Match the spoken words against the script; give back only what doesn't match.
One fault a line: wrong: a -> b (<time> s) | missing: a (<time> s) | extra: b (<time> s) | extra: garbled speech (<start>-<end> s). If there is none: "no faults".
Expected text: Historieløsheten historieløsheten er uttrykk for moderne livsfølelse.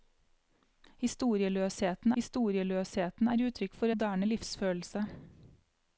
no faults